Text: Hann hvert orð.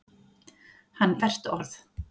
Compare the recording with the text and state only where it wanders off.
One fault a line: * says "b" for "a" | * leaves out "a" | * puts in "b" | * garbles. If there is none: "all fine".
all fine